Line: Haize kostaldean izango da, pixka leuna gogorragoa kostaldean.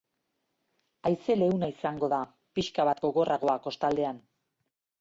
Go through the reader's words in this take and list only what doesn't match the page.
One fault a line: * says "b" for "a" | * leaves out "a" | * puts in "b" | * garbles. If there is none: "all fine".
* says "leuna" for "kostaldean"
* says "bat" for "leuna"